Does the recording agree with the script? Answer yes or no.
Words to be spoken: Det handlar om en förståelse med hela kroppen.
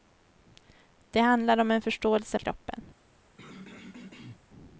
no